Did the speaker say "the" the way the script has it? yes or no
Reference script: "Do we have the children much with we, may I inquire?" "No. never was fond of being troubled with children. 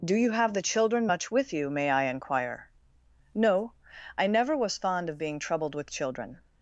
yes